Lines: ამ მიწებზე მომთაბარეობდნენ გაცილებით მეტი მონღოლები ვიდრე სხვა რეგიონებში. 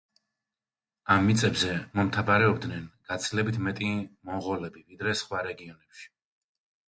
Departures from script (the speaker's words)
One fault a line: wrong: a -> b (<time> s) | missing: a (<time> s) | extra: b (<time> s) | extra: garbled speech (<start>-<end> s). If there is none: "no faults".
no faults